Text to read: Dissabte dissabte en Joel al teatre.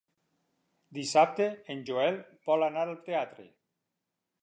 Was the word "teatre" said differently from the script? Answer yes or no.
no